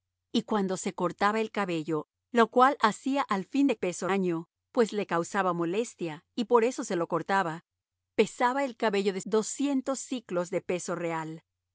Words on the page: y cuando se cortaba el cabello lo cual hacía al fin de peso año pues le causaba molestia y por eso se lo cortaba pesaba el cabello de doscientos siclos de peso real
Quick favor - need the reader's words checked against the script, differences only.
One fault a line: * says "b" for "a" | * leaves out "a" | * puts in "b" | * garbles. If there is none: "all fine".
all fine